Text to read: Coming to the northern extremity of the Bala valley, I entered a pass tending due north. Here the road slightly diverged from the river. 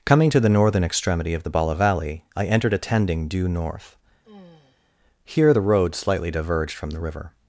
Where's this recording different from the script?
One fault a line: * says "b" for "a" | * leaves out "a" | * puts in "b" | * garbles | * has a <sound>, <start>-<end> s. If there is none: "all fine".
* leaves out "pass"
* has a sigh, 4.2-4.9 s